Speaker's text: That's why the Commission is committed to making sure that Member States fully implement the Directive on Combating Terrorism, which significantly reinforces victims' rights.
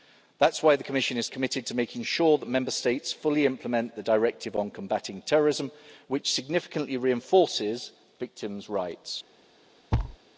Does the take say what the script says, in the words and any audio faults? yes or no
no